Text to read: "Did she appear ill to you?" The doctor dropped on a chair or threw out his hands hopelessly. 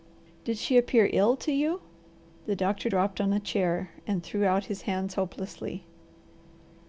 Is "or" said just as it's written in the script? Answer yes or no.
no